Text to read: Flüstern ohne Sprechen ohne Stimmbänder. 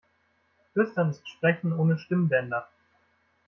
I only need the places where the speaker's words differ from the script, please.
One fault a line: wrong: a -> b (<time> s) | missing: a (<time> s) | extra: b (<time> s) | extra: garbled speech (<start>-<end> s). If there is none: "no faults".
wrong: ohne -> ist (1.1 s)